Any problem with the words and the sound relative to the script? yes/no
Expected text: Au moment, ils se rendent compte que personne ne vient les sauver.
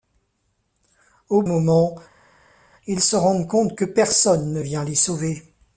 no